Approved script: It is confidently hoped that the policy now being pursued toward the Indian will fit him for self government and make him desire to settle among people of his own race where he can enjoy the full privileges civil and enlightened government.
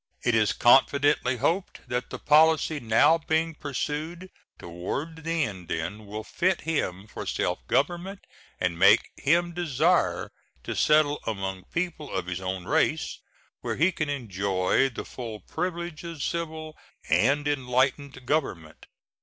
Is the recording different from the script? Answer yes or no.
no